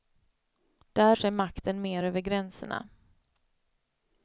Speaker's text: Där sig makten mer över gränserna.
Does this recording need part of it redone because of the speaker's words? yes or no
no